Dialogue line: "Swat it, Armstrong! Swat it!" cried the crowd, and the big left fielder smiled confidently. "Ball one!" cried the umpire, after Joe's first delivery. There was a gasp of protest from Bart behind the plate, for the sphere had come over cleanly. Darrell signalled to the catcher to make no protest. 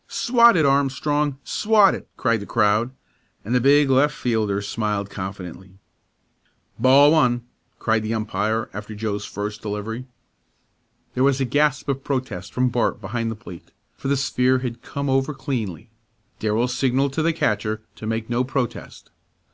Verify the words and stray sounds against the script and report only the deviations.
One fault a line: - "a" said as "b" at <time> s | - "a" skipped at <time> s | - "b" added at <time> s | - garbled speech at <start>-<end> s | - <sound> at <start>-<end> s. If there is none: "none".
none